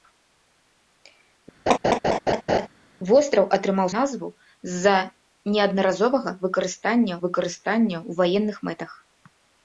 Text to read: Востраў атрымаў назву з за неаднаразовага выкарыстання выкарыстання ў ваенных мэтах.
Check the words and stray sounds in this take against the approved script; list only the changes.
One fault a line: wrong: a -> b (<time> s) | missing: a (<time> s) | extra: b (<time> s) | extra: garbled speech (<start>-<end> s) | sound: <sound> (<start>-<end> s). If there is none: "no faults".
sound: laugh (1.7-2.7 s)